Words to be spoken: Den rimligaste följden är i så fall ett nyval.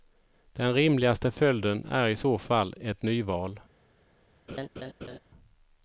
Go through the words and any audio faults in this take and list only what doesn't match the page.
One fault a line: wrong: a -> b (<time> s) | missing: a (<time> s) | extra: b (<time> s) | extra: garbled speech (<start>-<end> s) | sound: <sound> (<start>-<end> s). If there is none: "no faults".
sound: laugh (4.5-5.2 s)